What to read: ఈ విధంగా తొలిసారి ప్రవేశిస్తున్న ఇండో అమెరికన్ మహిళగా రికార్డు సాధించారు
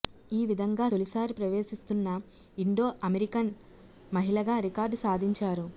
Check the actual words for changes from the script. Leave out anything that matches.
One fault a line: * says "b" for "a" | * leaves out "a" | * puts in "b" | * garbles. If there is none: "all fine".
all fine